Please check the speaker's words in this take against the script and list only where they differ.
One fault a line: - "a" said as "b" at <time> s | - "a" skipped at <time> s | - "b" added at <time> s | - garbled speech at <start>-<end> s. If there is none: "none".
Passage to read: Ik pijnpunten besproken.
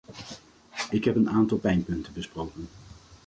- "heb een aantal" added at 1.0 s